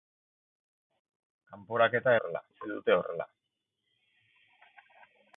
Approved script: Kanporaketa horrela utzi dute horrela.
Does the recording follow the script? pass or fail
pass